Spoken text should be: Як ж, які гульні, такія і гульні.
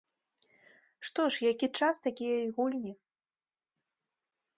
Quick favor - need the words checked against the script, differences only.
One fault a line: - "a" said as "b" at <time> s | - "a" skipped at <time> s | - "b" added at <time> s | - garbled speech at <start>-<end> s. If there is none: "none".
- "Як" said as "Што" at 1.1 s
- "гульні" said as "час" at 1.8 s